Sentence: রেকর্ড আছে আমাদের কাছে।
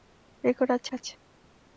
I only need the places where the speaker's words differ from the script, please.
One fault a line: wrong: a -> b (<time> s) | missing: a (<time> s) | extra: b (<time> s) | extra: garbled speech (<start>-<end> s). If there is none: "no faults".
missing: আমাদের (0.9 s)